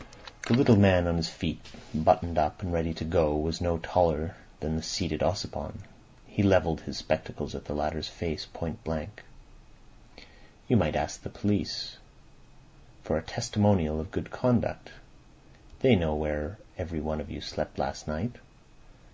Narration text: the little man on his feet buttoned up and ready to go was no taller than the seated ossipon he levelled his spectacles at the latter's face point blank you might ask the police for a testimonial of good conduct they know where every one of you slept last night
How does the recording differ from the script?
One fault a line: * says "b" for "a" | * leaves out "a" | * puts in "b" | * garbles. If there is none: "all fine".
all fine